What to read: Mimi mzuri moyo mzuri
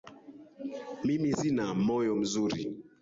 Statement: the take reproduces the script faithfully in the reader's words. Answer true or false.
false